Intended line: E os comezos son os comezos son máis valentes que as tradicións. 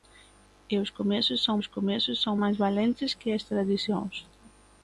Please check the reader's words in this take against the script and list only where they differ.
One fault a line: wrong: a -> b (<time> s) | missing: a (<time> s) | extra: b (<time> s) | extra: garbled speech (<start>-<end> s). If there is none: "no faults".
no faults